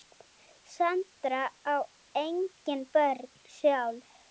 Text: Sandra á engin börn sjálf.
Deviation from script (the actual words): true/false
false